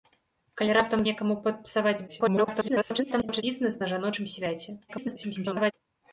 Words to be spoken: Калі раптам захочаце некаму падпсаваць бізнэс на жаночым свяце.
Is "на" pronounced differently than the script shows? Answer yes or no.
no